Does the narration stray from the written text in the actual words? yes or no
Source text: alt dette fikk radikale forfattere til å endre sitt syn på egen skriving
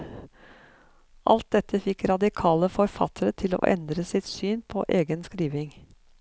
no